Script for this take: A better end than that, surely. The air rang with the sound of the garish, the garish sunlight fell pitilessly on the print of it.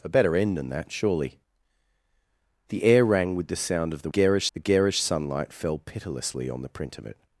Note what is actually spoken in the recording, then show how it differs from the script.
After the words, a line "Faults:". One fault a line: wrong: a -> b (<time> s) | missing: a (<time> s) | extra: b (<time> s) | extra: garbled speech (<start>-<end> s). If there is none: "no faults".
A better end than that, surely. The air rang with the sound of the garish, the garish sunlight fell pitilessly on the print of it.
Faults:
no faults